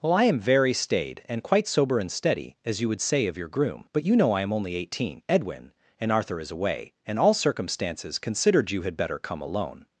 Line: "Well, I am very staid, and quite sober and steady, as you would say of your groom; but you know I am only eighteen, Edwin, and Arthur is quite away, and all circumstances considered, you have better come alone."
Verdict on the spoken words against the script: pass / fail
fail